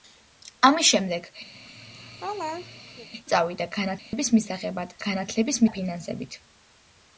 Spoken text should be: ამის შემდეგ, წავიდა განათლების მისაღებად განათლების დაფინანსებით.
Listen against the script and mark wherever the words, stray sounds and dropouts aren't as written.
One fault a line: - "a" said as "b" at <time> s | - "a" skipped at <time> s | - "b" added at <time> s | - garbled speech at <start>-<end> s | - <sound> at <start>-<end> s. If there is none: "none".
- laugh at 1.5-3.1 s
- dropout at 4.0-4.1 s